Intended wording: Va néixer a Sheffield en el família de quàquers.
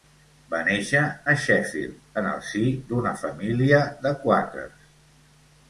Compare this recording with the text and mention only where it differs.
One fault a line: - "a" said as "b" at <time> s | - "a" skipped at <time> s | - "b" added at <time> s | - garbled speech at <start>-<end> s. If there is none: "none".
- "si d'una" added at 2.5 s